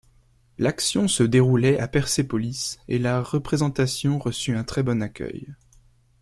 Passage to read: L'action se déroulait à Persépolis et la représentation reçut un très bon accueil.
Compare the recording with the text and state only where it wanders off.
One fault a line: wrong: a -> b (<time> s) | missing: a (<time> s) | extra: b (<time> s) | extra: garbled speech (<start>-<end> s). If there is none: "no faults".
no faults